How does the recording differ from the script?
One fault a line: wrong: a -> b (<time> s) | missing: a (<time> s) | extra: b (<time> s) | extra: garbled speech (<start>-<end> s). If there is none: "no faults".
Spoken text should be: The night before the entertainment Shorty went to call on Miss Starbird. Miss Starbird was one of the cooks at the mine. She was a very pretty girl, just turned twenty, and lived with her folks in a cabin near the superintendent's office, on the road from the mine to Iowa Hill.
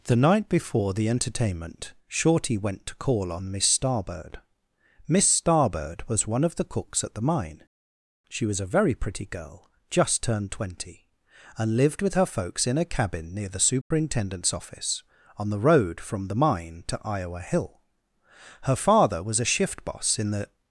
extra: Her father was a shift boss in the (18.6 s)